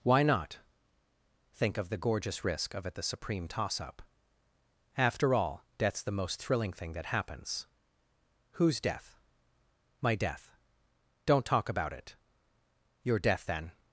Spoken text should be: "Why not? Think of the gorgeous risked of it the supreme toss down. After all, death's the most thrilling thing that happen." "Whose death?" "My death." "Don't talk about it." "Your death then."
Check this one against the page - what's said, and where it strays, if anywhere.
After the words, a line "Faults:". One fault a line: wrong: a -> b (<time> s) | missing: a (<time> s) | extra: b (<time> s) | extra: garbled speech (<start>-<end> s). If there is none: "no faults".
"Why not? Think of the gorgeous risk of it the supreme toss up. After all, death's the most thrilling thing that happens." "Whose death?" "My death." "Don't talk about it." "Your death then."
Faults:
wrong: risked -> risk (2.4 s)
wrong: down -> up (3.8 s)
wrong: happen -> happens (7.1 s)